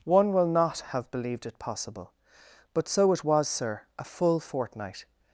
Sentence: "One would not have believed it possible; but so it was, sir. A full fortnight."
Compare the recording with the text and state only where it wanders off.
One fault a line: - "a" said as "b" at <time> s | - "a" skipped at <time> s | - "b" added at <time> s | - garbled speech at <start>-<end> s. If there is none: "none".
- "would" said as "will" at 0.3 s